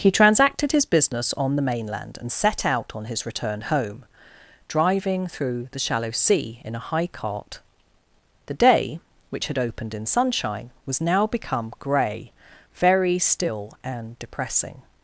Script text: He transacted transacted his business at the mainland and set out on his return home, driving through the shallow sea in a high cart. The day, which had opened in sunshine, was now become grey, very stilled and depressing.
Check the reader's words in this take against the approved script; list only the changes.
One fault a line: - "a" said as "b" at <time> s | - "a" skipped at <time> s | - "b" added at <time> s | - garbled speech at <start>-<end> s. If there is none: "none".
- "transacted" skipped at 0.7 s
- "at" said as "on" at 1.4 s
- "stilled" said as "still" at 13.2 s